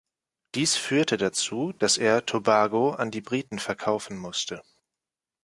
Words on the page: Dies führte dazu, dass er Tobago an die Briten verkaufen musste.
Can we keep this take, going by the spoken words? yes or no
yes